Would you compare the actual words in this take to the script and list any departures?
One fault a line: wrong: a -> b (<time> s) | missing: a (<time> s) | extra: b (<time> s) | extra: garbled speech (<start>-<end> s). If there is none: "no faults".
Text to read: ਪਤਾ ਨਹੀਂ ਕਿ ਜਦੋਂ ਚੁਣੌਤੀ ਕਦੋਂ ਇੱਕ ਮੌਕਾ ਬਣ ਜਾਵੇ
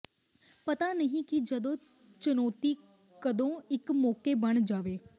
no faults